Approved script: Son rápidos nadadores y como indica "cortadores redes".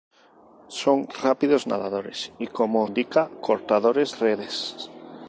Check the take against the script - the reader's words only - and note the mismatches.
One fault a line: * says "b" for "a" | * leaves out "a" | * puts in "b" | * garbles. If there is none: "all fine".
all fine